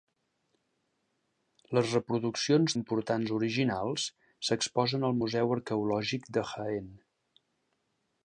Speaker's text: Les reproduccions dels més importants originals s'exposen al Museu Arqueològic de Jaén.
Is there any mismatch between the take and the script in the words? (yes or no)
yes